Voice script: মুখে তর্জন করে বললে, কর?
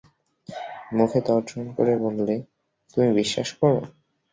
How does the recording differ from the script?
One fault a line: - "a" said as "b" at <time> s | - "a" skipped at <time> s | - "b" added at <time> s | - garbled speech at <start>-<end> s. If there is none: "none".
- "তুমি বিশ্বাস" added at 2.9 s